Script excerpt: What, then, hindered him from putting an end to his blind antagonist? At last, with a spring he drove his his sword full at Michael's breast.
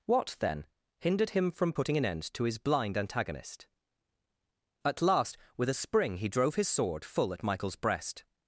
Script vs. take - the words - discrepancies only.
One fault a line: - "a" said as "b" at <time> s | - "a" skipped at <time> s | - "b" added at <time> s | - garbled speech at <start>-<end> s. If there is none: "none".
- "his" skipped at 6.7 s